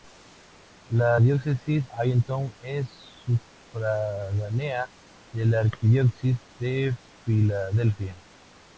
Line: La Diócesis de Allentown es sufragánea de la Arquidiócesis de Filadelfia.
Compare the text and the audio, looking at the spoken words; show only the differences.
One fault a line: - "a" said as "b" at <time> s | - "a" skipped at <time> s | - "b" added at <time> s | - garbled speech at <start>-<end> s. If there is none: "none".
- "de" skipped at 1.8 s